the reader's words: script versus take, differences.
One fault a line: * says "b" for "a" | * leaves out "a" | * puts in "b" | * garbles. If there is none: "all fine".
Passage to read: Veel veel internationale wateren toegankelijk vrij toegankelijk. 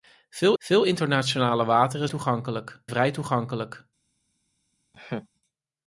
all fine